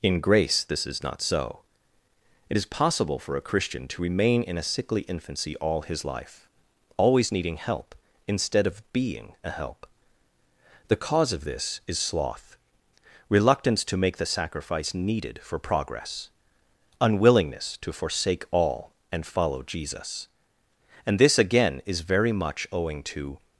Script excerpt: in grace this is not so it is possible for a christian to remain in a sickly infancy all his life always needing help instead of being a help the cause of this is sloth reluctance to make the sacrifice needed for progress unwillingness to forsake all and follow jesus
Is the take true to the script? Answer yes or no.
no